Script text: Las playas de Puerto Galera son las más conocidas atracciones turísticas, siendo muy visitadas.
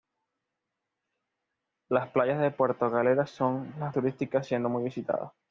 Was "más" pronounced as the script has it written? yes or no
no